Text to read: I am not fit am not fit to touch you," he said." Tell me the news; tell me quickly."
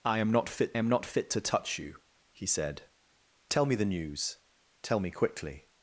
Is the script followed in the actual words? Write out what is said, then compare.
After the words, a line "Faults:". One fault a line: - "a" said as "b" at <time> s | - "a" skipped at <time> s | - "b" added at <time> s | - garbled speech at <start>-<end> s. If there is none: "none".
I am not fit am not fit to touch you," he said." Tell me the news; tell me quickly."
Faults:
none